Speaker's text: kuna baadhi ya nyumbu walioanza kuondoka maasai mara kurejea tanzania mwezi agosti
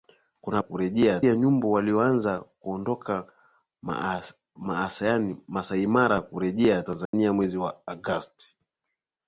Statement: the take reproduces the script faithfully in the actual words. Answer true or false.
false